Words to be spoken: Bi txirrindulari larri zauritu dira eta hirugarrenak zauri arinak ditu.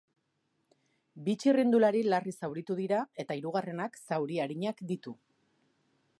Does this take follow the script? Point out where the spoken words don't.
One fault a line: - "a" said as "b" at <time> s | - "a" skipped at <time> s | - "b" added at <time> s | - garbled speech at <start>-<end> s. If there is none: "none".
none